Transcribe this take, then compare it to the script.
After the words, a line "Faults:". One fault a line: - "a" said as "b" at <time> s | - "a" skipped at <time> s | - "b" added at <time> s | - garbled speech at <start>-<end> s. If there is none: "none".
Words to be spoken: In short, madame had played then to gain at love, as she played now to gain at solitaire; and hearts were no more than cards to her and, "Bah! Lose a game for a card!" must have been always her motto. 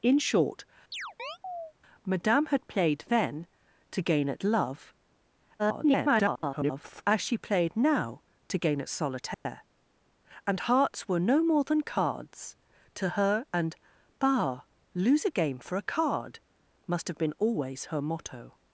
In short, madame had played then to gain at love, [garbled] as she played now to gain at solitaire; and hearts were no more than cards to her and, "Bah! Lose a game for a card!" must have been always her motto.
Faults:
- garbled speech at 5.6-7.0 s